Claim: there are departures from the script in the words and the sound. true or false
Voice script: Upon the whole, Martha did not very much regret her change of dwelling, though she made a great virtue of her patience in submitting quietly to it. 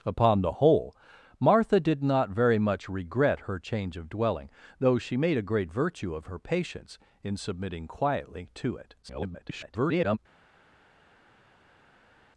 true